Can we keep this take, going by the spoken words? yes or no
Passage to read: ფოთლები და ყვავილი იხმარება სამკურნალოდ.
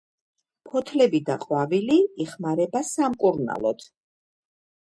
yes